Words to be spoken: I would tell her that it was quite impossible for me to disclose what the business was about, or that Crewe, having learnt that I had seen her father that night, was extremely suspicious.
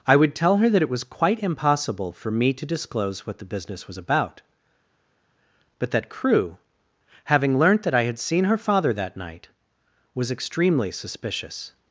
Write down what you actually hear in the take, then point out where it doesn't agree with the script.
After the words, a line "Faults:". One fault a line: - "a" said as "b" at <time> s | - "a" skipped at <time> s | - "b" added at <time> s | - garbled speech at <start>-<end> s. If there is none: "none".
I would tell her that it was quite impossible for me to disclose what the business was about, but that Crewe, having learnt that I had seen her father that night, was extremely suspicious.
Faults:
- "or" said as "but" at 5.8 s